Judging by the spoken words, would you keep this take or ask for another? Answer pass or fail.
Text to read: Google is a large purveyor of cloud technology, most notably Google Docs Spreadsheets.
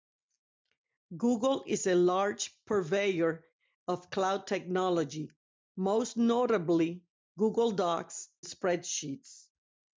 pass